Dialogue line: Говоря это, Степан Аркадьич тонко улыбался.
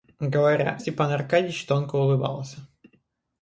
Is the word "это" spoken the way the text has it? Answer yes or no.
no